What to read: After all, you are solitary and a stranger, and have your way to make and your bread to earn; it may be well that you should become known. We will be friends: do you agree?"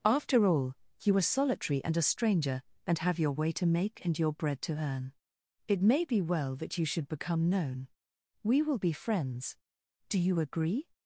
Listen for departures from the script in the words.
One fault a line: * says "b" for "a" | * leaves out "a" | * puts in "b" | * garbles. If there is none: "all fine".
all fine